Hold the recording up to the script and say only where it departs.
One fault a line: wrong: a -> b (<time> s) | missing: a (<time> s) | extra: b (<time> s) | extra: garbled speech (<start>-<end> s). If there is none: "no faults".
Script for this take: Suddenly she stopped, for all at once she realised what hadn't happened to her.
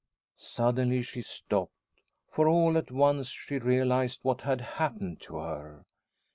wrong: hadn't -> had (4.4 s)